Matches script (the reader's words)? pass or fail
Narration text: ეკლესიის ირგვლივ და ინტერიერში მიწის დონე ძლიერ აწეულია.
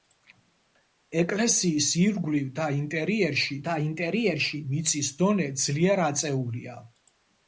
fail